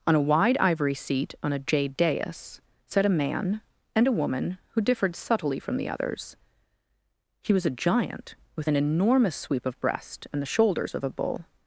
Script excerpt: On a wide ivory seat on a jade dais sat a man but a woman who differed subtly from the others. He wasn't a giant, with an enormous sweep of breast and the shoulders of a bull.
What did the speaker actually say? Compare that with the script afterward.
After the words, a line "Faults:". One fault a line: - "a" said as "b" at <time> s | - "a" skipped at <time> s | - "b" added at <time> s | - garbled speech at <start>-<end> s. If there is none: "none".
On a wide ivory seat on a jade dais sat a man and a woman who differed subtly from the others. He was a giant, with an enormous sweep of breast and the shoulders of a bull.
Faults:
- "but" said as "and" at 4.0 s
- "wasn't" said as "was" at 7.5 s